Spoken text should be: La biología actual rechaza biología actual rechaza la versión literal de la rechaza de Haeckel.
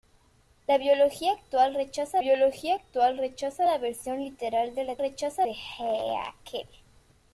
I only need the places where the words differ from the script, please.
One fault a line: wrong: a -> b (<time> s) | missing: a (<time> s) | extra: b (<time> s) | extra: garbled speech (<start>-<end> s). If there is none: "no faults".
no faults